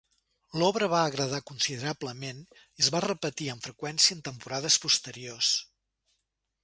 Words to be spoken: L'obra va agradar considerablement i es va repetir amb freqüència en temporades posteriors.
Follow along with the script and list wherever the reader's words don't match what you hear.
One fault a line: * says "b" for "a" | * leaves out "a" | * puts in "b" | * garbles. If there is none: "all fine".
all fine